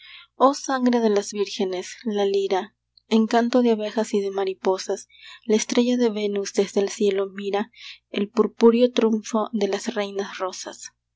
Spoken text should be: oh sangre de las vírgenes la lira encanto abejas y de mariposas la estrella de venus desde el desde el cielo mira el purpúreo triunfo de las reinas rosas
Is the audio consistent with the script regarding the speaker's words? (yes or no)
no